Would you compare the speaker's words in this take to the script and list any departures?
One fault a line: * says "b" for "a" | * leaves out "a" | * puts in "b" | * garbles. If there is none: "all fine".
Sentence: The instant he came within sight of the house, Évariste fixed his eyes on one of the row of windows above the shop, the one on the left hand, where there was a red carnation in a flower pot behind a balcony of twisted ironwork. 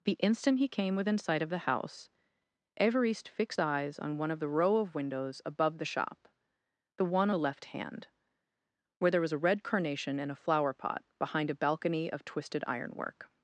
* leaves out "his"
* leaves out "on"